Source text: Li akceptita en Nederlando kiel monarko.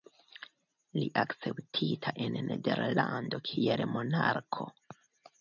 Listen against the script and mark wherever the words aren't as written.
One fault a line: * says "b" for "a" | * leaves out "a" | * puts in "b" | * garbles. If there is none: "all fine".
all fine